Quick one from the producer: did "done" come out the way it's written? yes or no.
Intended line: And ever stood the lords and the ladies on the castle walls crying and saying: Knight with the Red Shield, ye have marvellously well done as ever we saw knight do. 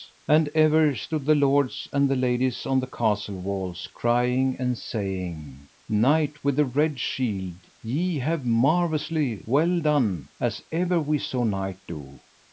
yes